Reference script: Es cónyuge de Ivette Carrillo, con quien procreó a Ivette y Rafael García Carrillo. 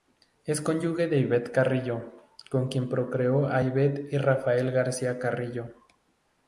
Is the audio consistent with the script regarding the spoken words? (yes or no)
yes